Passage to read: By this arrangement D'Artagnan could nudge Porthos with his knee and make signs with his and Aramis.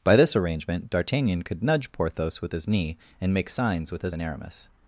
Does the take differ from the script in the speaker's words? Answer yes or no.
no